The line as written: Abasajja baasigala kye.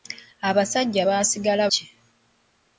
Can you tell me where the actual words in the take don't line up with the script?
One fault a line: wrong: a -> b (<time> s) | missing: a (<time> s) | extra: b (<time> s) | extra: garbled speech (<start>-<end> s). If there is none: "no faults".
no faults